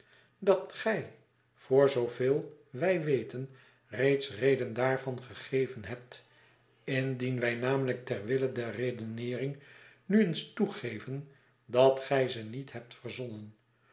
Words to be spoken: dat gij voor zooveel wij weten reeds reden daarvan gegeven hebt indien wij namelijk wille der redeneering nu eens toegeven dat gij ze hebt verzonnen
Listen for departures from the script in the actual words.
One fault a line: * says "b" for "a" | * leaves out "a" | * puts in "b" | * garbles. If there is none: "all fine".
* puts in "ter"
* puts in "niet"